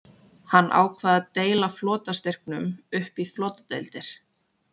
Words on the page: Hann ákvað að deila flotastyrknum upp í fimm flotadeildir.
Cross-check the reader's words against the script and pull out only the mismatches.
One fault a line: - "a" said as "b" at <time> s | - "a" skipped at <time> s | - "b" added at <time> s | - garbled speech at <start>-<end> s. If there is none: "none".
- "fimm" skipped at 3.3 s